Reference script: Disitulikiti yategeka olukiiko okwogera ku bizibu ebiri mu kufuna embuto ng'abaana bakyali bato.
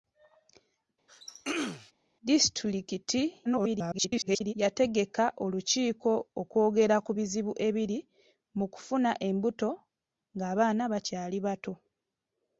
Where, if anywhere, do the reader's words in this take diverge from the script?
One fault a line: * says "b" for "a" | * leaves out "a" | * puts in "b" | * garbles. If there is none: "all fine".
* garbles